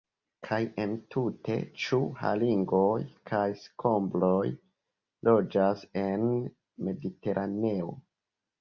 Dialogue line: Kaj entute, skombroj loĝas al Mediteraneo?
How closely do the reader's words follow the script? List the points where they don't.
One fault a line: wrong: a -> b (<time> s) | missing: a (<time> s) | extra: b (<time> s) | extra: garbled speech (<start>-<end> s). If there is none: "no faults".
extra: ĉu haringoj kaj (1.8 s)
wrong: al -> en (6.1 s)